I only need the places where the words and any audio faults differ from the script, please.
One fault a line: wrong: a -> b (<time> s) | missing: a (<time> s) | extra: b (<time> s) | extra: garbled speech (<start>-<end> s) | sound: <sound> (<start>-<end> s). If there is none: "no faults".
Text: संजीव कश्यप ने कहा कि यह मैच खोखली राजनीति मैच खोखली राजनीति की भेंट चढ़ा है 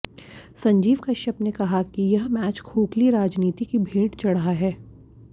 missing: मैच खोखली राजनीति (3.6 s)